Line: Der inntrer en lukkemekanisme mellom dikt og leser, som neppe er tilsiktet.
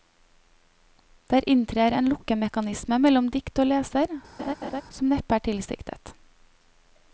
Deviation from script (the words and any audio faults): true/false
true